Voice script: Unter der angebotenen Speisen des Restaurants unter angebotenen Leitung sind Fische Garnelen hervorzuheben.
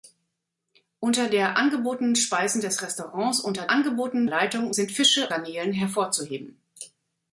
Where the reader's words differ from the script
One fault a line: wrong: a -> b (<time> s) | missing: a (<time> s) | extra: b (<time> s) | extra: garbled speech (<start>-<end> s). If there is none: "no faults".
no faults